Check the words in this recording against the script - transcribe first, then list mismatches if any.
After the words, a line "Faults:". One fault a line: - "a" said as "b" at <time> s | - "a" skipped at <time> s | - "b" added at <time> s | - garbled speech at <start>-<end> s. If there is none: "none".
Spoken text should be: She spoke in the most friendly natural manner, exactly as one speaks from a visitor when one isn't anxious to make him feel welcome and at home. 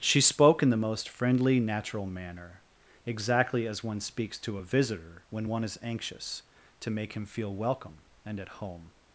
She spoke in the most friendly natural manner, exactly as one speaks to a visitor when one is anxious to make him feel welcome and at home.
Faults:
- "from" said as "to" at 4.4 s
- "isn't" said as "is" at 5.6 s